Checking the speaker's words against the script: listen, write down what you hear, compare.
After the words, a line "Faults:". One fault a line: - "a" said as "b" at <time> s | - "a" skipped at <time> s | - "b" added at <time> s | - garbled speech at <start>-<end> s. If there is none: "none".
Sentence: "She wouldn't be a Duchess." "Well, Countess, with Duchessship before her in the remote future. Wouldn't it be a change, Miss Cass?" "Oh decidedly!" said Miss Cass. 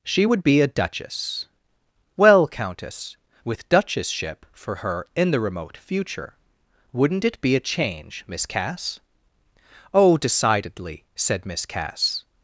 "She would be a Duchess." "Well, Countess, with Duchessship for her in the remote future. Wouldn't it be a change, Miss Cass?" "Oh decidedly!" said Miss Cass.
Faults:
- "wouldn't" said as "would" at 0.2 s
- "before" said as "for" at 4.5 s